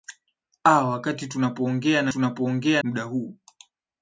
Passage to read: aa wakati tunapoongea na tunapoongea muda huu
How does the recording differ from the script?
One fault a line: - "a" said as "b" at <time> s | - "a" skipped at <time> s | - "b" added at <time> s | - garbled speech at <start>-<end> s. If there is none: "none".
none